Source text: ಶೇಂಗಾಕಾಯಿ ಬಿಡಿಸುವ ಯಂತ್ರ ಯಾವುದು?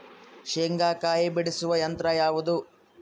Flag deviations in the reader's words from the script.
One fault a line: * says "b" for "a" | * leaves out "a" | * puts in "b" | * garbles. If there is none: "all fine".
all fine